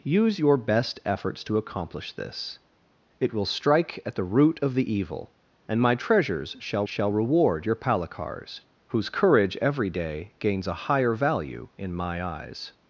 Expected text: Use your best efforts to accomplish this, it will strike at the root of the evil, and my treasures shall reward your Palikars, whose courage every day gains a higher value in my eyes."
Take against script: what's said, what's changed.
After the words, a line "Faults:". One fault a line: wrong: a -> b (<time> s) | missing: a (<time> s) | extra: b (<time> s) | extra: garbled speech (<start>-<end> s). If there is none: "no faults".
Use your best efforts to accomplish this, it will strike at the root of the evil, and my treasures shall shall reward your Palikars, whose courage every day gains a higher value in my eyes."
Faults:
extra: shall (6.8 s)